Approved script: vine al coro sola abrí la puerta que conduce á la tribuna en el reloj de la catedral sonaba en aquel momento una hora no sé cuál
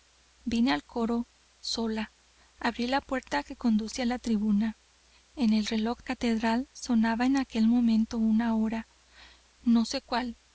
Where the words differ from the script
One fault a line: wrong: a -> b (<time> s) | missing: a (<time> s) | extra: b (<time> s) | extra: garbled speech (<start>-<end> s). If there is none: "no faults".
missing: de la (6.0 s)